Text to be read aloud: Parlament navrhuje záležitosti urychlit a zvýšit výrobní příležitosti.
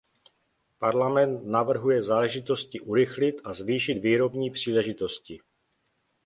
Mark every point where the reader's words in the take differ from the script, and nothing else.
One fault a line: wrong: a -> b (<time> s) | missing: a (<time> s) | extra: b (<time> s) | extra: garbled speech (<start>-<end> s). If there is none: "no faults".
no faults